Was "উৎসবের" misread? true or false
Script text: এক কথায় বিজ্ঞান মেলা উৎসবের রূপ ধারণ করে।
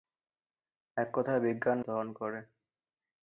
true